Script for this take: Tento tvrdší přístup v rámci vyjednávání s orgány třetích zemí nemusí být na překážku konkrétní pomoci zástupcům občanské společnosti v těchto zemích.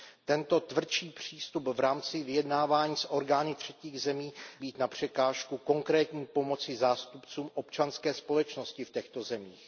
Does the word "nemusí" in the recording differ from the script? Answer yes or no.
yes